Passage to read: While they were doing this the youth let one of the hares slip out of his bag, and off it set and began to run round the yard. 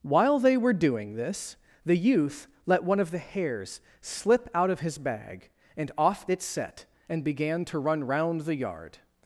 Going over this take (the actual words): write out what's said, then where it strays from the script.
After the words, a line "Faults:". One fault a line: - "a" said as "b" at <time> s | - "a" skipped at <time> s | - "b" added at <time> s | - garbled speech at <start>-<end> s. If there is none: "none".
While they were doing this the youth let one of the hares slip out of his bag, and off it set and began to run round the yard.
Faults:
none